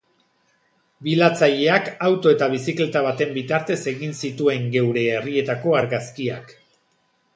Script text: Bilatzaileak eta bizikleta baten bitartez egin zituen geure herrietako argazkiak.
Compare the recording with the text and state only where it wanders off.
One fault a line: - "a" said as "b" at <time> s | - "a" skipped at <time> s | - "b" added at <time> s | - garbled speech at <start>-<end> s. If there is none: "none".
- "auto" added at 2.1 s